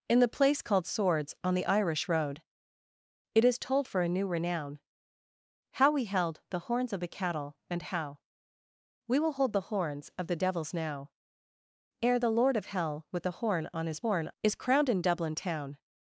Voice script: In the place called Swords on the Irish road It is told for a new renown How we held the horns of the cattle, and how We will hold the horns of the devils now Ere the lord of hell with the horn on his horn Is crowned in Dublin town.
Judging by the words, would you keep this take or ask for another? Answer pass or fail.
pass